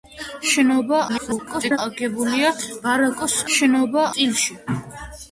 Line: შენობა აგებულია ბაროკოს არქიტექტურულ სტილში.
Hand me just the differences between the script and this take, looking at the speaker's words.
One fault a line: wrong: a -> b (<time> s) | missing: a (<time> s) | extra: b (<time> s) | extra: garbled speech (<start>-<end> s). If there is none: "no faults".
extra: garbled speech (1.1-1.8 s)
wrong: არქიტექტურულ -> შენობა (3.6 s)